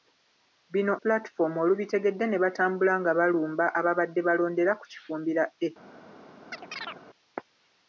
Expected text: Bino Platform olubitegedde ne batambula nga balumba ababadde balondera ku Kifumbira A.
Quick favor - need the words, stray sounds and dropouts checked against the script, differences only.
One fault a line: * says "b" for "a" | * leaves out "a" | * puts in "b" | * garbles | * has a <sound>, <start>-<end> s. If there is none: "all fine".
* has a chirp, 6.5-7.0 s